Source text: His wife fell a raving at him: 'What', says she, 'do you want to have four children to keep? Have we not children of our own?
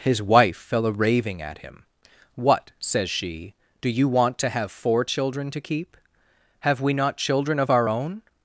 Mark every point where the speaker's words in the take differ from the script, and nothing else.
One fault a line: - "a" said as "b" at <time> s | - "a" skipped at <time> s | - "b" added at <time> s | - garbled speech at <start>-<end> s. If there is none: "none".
none